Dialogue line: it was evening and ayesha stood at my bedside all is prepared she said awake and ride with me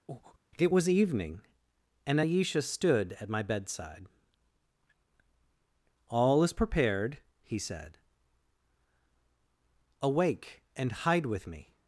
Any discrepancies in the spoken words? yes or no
yes